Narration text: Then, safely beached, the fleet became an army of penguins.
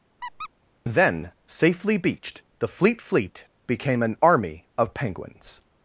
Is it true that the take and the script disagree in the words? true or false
true